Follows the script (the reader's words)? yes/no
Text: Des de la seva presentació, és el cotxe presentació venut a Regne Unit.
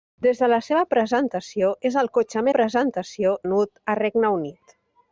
yes